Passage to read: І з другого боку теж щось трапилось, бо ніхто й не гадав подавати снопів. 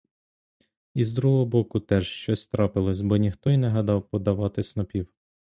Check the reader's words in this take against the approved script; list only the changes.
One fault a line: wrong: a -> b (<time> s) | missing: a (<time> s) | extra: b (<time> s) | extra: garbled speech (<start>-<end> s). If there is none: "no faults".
no faults